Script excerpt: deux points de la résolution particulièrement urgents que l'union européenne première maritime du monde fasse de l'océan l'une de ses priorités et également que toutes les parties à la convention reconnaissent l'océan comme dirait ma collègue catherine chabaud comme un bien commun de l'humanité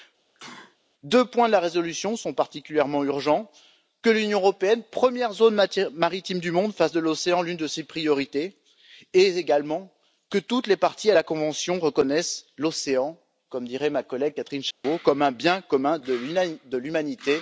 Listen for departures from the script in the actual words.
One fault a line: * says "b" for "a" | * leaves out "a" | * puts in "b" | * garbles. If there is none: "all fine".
* puts in "sont"
* puts in "zone"